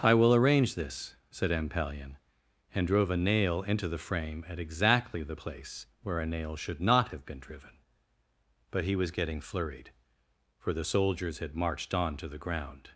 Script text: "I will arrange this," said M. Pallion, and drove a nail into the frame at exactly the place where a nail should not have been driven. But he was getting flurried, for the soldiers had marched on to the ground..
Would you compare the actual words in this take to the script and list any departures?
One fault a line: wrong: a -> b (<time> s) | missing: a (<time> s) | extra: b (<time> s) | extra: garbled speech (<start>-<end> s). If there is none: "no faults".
no faults